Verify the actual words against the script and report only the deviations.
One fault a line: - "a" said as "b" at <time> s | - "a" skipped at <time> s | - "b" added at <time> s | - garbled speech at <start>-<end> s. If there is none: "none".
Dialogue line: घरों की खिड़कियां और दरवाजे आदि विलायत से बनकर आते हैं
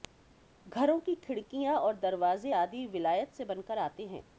none